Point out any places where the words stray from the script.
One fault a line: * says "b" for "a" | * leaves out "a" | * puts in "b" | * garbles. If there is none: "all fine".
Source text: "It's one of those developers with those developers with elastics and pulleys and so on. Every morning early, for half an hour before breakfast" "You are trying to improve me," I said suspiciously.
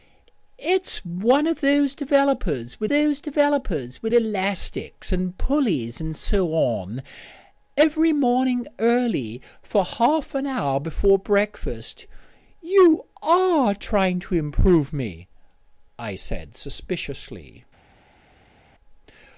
all fine